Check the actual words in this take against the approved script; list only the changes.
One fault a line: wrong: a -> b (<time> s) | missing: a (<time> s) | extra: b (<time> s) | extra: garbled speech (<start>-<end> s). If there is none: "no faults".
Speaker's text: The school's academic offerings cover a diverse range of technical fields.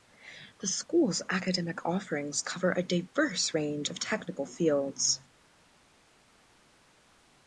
no faults